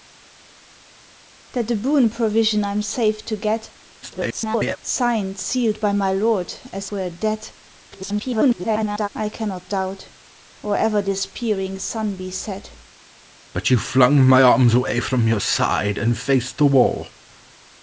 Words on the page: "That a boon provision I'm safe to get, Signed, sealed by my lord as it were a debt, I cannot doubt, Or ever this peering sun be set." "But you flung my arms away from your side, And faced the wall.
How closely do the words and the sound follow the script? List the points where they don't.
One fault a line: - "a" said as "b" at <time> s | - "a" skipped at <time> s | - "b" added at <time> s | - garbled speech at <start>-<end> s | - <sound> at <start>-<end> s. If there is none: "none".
- garbled speech at 4.0-4.8 s
- "it" skipped at 6.9 s
- garbled speech at 7.9-9.1 s